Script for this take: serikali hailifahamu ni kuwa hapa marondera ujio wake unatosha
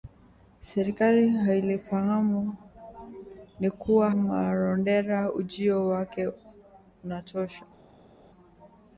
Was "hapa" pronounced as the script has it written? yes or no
no